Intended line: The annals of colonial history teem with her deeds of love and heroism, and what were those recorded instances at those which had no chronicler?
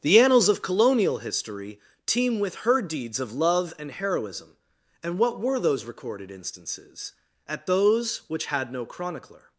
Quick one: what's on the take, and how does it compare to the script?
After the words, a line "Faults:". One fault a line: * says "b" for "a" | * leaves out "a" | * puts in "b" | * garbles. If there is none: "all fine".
The annals of colonial history teem with her deeds of love and heroism, and what were those recorded instances at those which had no chronicler?
Faults:
all fine